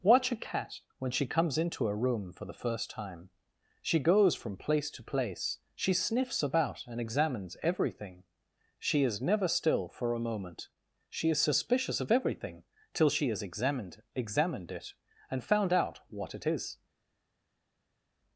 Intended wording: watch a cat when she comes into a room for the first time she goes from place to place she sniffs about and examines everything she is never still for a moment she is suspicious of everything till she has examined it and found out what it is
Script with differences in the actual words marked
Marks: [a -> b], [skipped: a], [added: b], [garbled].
watch a cat when she comes into a room for the first time she goes from place to place she sniffs about and examines everything she is never still for a moment she is suspicious of everything till she has examined [added: examined] it and found out what it is